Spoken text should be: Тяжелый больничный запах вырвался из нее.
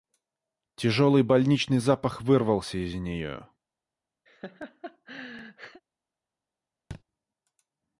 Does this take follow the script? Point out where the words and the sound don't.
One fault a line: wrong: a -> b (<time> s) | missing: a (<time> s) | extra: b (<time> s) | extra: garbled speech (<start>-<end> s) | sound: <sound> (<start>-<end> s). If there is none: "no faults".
sound: laugh (4.3-5.8 s)
sound: thud (6.9-7.0 s)